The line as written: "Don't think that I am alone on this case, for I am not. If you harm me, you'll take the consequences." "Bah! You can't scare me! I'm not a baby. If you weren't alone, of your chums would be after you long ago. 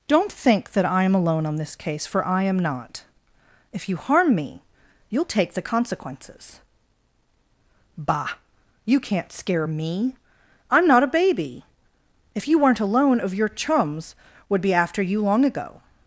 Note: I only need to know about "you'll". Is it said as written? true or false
true